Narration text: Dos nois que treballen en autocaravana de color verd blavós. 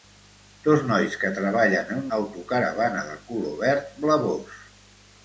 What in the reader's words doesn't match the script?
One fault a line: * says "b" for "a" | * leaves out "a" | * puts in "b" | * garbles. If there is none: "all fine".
all fine